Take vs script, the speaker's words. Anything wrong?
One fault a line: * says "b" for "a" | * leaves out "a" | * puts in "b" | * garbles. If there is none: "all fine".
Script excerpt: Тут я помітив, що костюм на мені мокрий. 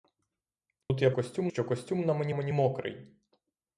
* says "костюм" for "помітив"
* puts in "мені"